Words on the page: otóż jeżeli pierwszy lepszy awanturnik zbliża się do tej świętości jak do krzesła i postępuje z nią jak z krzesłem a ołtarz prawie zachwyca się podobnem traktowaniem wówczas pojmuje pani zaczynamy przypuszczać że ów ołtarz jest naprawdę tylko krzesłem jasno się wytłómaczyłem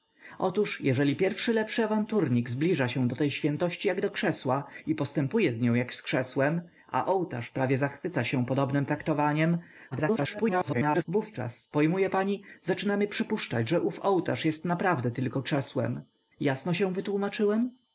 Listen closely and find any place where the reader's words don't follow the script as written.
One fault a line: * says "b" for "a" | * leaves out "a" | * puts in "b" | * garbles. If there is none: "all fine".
* garbles